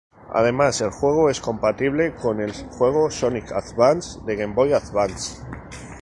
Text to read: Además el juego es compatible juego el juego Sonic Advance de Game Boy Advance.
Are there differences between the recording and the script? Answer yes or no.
yes